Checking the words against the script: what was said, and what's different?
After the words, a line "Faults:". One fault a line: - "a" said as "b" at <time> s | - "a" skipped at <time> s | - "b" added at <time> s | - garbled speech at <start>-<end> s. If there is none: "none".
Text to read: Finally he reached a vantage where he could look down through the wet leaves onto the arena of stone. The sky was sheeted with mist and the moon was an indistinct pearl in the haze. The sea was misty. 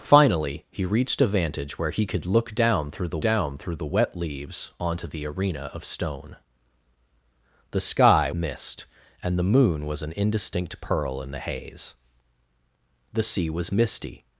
Finally he reached a vantage where he could look down through the down through the wet leaves onto the arena of stone. The sky mist and the moon was an indistinct pearl in the haze. The sea was misty.
Faults:
- "down through the" added at 3.2 s
- "was sheeted with" skipped at 8.3 s